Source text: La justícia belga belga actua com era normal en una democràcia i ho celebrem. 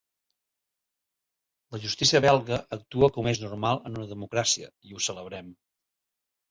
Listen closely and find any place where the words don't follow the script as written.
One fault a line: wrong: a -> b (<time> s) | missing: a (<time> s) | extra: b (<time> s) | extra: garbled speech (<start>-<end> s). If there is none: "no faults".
missing: belga (2.6 s)
wrong: era -> és (3.3 s)